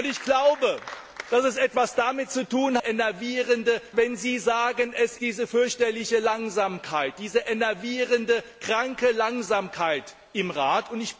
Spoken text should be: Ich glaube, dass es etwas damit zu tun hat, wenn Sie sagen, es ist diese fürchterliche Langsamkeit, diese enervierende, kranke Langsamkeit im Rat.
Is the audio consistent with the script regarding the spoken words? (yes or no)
no